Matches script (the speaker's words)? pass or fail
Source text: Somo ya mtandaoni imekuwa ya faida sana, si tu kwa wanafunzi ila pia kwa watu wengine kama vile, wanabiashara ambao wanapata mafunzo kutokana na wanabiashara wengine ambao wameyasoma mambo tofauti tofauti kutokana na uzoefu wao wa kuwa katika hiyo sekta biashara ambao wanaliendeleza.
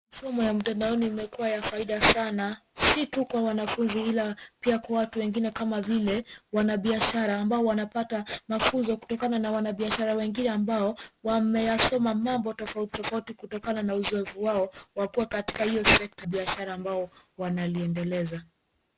pass